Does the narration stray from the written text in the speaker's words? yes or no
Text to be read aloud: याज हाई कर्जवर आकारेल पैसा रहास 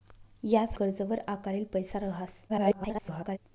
yes